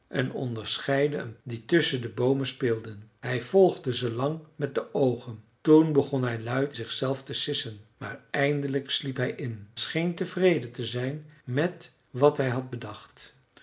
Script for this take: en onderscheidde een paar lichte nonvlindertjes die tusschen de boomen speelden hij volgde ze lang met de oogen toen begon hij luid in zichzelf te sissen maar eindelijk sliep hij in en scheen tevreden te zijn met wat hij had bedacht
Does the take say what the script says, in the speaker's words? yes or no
no